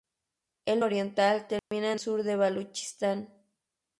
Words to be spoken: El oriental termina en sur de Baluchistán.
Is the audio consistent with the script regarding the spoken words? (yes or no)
yes